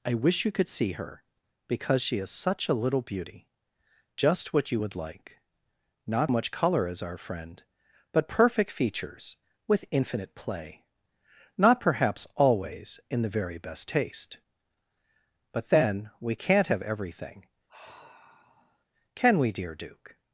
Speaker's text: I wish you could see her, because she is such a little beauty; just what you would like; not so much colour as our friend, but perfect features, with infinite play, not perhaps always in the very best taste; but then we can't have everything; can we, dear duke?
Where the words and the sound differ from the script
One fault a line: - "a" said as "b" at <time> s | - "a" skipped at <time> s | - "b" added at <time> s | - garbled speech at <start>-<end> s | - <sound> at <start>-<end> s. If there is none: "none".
- "so" skipped at 6.3 s
- sigh at 17.7-18.8 s